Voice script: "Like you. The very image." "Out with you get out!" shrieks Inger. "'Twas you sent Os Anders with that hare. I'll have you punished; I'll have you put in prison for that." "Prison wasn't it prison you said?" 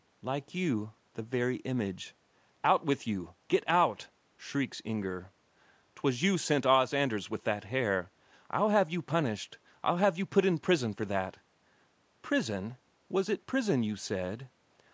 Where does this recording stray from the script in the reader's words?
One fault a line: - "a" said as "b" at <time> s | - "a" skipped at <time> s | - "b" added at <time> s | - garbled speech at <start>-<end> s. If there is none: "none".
- "wasn't" said as "was" at 13.1 s